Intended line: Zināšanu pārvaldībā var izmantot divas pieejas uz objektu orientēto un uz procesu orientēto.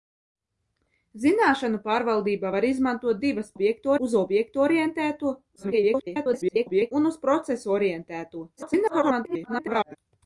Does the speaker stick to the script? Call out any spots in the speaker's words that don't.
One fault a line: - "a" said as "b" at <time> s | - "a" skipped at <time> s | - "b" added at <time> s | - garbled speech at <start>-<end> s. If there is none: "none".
- "pieejas" said as "objektu" at 3.5 s
- garbled speech at 5.6-6.9 s
- garbled speech at 8.6-10.0 s